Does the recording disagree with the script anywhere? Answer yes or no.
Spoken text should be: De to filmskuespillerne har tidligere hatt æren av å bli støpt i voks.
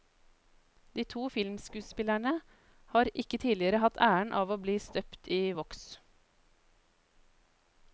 yes